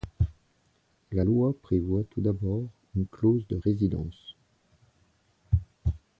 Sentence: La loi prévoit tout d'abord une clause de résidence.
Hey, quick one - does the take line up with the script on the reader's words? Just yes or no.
yes